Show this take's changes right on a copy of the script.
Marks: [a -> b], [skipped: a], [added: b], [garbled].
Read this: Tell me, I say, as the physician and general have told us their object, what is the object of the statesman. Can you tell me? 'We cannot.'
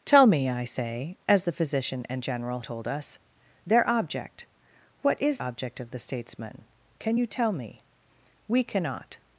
Tell me, I say, as the physician and general [skipped: have] told us their object, what is [skipped: the] object of the statesman. Can you tell me? 'We cannot.'